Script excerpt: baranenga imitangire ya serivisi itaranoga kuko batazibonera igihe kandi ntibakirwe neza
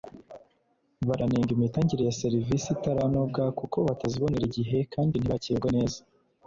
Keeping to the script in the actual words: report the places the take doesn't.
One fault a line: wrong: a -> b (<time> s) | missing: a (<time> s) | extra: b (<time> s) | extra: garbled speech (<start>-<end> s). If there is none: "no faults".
no faults